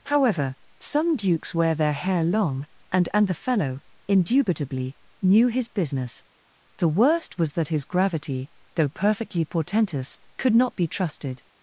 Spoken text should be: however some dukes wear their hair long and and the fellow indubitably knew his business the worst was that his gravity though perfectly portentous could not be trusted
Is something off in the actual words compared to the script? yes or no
no